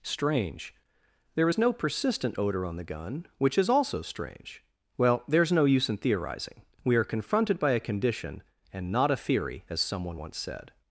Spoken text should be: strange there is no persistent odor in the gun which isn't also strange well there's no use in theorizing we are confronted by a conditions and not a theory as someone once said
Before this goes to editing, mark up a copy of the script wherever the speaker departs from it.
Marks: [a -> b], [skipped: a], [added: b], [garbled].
strange there is no persistent odor [in -> on] the gun which [isn't -> is] also strange well there's no use in theorizing we are confronted by a [conditions -> condition] and not a theory as someone once said